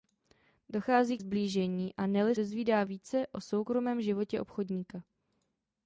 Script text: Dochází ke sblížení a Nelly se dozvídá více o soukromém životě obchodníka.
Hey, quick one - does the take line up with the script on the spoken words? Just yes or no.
no